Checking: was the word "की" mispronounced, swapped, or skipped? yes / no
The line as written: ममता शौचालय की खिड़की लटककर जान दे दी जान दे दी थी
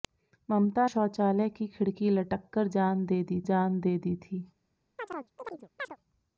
no